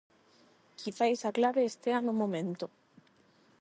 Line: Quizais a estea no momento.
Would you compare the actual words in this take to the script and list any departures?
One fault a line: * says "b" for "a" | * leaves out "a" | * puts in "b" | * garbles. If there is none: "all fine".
* puts in "clave"